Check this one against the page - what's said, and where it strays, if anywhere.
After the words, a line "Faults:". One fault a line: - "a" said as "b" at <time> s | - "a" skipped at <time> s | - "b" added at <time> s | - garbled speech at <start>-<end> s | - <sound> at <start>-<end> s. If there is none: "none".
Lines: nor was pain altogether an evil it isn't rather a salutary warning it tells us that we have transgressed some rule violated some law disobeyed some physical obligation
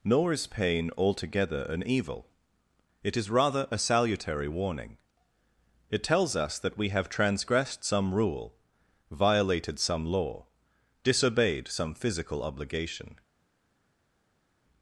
nor is pain altogether an evil it is rather a salutary warning it tells us that we have transgressed some rule violated some law disobeyed some physical obligation
Faults:
- "was" said as "is" at 0.3 s
- "isn't" said as "is" at 3.1 s